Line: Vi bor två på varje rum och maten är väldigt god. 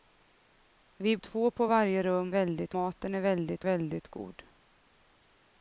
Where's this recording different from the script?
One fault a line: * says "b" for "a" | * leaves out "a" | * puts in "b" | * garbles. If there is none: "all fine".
* leaves out "bor"
* says "väldigt" for "och"
* puts in "väldigt"